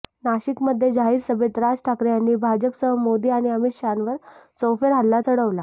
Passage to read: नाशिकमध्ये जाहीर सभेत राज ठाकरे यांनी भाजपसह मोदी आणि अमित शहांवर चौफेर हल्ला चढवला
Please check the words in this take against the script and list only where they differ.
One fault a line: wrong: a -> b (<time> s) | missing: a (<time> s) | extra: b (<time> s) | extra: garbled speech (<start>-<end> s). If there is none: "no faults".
no faults